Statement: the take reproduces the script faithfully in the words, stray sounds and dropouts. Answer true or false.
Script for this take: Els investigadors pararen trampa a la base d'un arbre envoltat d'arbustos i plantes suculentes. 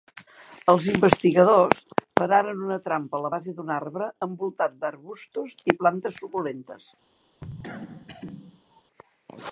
false